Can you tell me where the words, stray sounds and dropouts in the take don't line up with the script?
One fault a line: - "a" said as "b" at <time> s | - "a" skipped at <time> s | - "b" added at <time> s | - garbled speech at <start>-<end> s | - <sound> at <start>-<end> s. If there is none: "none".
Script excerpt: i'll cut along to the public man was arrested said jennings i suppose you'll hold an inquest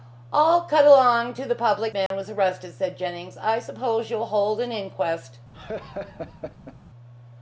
- dropout at 2.1-2.1 s
- laugh at 5.5-6.8 s